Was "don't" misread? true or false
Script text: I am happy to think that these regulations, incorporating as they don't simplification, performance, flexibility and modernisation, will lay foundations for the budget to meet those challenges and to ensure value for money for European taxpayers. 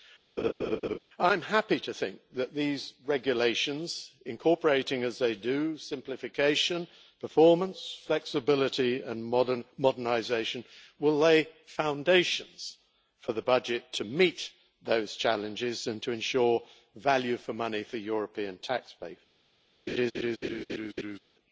true